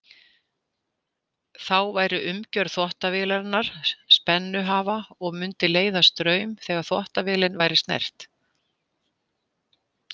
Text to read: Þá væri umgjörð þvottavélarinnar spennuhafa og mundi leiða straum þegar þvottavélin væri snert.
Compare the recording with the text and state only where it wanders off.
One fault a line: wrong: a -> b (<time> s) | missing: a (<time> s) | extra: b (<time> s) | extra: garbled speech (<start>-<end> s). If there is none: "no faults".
no faults